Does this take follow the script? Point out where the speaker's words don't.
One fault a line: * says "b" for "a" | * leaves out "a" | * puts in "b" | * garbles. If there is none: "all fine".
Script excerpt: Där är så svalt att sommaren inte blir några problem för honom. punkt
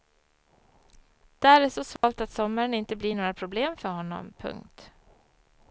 all fine